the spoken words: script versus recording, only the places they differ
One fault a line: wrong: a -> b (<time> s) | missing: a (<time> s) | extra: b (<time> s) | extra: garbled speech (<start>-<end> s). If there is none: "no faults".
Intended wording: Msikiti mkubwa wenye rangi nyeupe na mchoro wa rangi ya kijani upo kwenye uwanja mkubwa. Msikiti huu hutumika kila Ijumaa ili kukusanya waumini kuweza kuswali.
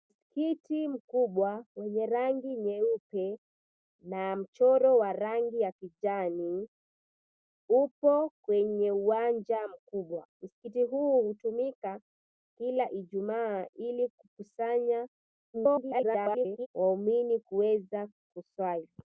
extra: garbled speech (15.5-16.7 s)